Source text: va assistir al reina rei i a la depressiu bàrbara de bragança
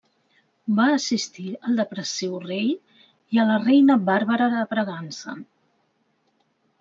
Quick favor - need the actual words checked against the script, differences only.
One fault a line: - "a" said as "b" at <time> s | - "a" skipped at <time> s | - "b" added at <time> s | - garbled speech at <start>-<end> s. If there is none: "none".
- "reina" said as "depressiu" at 1.8 s
- "depressiu" said as "reina" at 3.7 s